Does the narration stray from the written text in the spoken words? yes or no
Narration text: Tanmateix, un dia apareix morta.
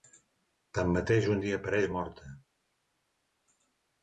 no